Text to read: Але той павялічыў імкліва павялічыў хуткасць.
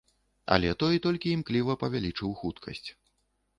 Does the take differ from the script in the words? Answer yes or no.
yes